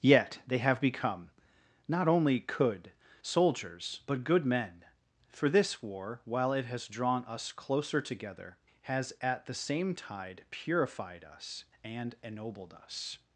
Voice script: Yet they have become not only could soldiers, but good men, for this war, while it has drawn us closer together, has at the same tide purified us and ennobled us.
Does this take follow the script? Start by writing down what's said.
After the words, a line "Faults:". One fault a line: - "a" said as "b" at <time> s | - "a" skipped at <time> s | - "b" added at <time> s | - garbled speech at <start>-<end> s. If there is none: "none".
Yet they have become not only could soldiers, but good men, for this war, while it has drawn us closer together, has at the same tide purified us and ennobled us.
Faults:
none